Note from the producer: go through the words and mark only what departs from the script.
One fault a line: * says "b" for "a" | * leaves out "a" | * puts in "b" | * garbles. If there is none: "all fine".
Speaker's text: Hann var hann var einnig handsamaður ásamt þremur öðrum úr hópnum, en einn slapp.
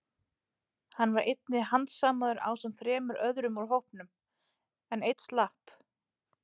* leaves out "hann var"